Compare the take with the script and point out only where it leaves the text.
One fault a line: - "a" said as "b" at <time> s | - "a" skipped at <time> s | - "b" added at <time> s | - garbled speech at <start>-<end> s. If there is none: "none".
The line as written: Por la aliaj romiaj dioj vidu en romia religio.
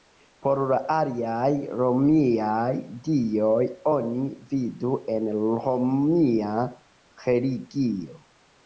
- "oni" added at 3.9 s